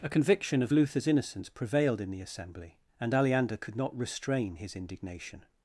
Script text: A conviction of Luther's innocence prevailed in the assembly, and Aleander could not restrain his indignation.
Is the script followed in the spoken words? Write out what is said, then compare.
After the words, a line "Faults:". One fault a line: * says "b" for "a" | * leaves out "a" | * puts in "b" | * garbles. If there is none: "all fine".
A conviction of Luther's innocence prevailed in the assembly, and Aleander could not restrain his indignation.
Faults:
all fine